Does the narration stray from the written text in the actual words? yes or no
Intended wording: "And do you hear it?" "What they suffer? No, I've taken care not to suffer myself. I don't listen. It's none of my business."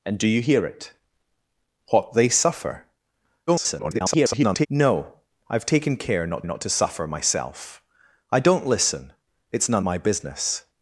yes